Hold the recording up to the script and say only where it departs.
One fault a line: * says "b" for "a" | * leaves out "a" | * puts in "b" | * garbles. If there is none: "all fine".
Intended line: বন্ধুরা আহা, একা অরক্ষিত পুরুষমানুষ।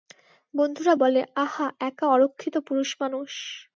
* puts in "বলে"